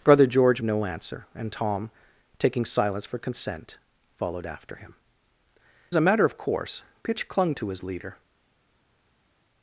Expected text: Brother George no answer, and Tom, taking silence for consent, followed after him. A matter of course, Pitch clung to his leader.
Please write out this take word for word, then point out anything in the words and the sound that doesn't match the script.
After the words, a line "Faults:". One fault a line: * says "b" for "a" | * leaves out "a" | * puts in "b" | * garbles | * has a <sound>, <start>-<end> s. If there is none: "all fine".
Brother George no answer, and Tom, taking silence for consent, followed after him. A matter of course, Pitch clung to his leader.
Faults:
all fine